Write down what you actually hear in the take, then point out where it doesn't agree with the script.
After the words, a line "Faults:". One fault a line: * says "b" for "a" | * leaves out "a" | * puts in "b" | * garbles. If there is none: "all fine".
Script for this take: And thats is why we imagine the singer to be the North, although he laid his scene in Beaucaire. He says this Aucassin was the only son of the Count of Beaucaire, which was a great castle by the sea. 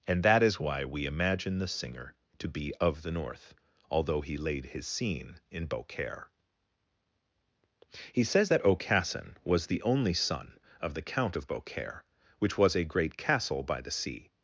And that is why we imagine the singer to be of the North, although he laid his scene in Beaucaire. He says that Aucassin was the only son of the Count of Beaucaire, which was a great castle by the sea.
Faults:
* says "that" for "thats"
* puts in "of"
* says "that" for "this"